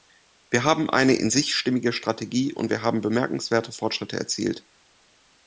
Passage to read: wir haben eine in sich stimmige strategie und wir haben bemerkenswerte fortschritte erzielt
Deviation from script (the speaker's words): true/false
false